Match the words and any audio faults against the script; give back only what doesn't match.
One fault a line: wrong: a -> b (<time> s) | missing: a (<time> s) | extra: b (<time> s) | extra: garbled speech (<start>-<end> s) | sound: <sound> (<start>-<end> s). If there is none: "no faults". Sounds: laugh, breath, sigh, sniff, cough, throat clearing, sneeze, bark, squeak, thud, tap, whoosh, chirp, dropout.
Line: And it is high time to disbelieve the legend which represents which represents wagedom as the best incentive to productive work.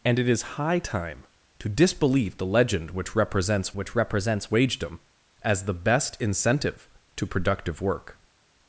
no faults